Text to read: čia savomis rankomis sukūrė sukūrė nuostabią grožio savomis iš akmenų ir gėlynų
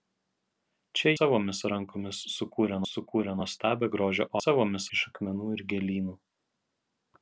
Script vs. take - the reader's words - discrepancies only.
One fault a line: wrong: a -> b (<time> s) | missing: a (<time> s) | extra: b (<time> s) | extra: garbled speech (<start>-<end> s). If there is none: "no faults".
no faults